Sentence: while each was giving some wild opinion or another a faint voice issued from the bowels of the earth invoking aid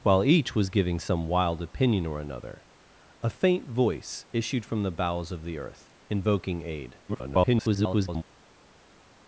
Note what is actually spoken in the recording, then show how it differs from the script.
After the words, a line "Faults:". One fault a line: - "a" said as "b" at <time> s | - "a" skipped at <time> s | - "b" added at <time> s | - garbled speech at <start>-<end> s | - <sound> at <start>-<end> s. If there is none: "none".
while each was giving some wild opinion or another a faint voice issued from the bowels of the earth invoking aid [garbled]
Faults:
- garbled speech at 7.1-8.2 s